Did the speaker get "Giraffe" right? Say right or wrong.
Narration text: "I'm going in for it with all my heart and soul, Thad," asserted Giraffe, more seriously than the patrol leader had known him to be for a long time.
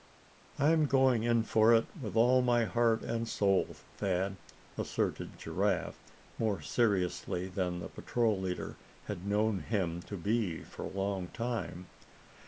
right